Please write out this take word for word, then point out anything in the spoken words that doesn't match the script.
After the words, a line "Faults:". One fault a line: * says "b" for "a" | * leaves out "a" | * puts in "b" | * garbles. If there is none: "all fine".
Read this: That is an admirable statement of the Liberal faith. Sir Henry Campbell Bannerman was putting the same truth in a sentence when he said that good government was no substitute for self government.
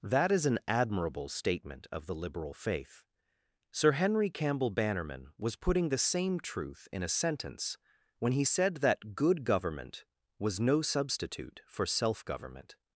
That is an admirable statement of the Liberal faith. Sir Henry Campbell Bannerman was putting the same truth in a sentence when he said that good government was no substitute for self government.
Faults:
all fine